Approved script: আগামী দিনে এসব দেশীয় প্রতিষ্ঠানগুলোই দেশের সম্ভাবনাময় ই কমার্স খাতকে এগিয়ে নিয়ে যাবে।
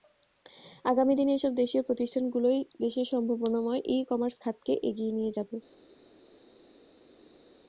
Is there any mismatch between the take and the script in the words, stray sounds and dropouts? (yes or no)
no